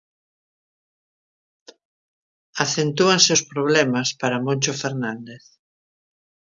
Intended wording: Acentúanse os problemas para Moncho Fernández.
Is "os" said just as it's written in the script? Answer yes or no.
yes